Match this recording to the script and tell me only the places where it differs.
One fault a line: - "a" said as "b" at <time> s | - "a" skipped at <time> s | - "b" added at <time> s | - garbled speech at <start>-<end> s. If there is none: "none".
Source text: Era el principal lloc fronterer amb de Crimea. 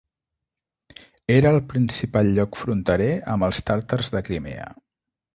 - "els tàrtars" added at 3.5 s